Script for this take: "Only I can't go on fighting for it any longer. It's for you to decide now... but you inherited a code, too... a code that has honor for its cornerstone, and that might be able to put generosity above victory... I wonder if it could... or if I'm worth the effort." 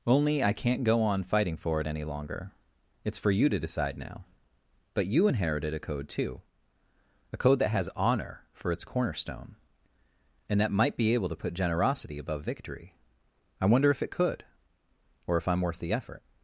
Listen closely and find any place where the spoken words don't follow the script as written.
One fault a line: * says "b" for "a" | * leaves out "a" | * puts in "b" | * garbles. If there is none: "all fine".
all fine